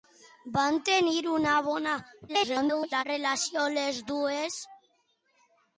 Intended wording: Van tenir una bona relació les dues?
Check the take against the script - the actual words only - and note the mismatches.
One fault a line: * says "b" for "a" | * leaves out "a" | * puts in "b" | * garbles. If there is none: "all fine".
* garbles